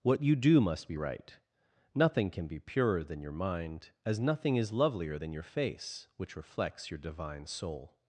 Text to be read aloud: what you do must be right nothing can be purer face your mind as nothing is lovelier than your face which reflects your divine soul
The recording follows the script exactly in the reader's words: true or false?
false